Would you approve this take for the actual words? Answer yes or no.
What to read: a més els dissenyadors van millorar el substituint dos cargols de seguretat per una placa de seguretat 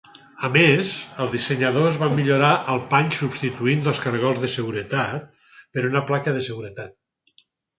no